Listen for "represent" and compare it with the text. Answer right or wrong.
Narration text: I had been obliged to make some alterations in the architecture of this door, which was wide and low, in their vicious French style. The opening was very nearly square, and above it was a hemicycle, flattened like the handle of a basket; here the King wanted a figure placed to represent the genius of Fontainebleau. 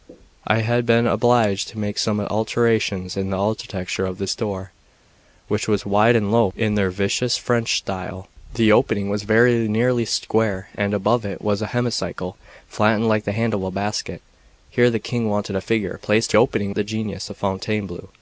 wrong